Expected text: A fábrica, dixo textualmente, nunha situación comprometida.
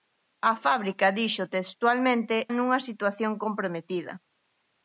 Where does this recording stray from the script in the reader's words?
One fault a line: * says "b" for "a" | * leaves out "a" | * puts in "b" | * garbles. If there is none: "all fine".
all fine